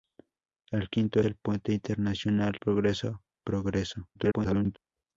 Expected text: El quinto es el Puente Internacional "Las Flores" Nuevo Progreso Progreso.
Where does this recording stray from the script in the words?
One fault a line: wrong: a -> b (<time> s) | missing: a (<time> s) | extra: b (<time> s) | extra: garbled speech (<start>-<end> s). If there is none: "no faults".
missing: es (1.2 s)
missing: Las Flores Nuevo (2.5 s)
extra: garbled speech (4.1-4.8 s)